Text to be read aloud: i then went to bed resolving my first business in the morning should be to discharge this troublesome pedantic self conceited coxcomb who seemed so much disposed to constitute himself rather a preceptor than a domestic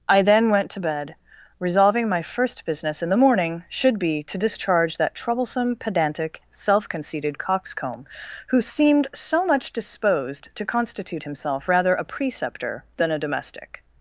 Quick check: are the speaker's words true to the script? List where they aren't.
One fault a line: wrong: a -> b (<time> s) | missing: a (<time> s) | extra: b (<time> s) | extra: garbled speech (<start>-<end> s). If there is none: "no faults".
wrong: this -> that (5.0 s)